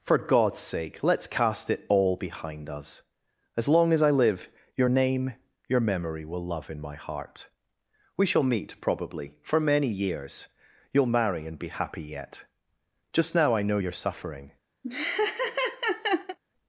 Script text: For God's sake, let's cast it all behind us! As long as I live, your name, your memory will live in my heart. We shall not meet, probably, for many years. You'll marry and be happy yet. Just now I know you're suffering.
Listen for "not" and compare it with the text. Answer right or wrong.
wrong